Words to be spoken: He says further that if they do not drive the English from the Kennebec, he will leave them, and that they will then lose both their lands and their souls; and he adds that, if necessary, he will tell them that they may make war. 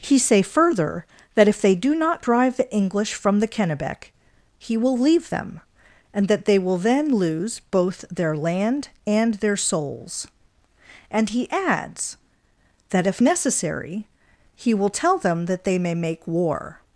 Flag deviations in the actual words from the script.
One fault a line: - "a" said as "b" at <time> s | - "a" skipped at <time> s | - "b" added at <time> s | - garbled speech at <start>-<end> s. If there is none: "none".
- "says" said as "say" at 0.2 s
- "lands" said as "land" at 8.3 s